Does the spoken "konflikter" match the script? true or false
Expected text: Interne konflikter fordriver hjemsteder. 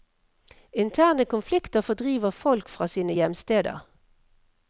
true